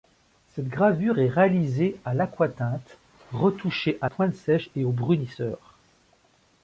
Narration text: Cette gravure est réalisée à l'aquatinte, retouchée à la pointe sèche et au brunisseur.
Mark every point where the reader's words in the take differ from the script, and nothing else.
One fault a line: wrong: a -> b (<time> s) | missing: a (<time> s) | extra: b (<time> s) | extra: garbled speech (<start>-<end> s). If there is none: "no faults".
missing: la (4.1 s)